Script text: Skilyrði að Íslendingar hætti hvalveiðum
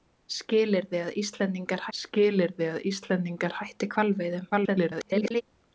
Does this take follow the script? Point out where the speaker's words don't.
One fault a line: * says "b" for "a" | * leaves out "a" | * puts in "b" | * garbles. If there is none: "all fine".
* puts in "skilyrði að Íslendingar"
* garbles